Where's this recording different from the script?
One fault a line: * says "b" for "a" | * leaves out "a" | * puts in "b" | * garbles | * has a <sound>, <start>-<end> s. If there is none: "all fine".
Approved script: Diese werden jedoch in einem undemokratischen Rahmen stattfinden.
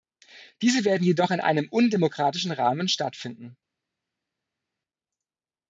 all fine